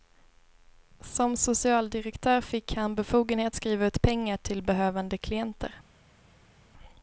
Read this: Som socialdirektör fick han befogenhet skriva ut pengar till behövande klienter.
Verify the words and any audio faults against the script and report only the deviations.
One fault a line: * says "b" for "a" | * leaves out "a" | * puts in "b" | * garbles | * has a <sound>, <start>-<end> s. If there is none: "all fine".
all fine